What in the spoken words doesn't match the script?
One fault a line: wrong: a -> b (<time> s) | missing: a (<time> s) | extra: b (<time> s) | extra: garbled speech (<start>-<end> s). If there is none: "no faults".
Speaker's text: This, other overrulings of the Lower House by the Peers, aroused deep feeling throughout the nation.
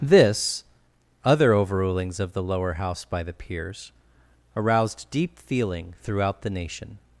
no faults